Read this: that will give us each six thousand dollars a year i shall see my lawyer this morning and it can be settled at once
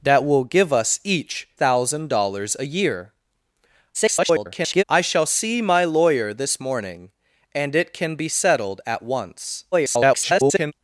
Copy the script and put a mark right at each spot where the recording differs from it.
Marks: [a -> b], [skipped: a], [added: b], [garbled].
that will give us each [skipped: six] thousand dollars a year [garbled] i shall see my lawyer this morning and it can be settled at once [garbled]